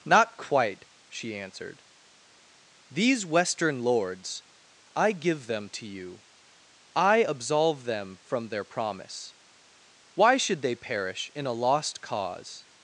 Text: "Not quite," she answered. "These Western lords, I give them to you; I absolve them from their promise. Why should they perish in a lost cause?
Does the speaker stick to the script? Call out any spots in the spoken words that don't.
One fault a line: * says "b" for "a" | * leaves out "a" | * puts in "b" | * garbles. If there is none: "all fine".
all fine